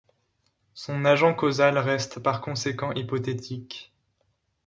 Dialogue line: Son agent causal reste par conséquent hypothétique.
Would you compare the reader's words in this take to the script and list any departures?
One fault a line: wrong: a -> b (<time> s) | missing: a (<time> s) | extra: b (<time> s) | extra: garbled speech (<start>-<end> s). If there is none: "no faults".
no faults